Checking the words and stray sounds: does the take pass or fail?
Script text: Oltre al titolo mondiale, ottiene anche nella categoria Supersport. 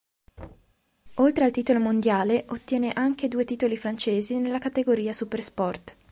fail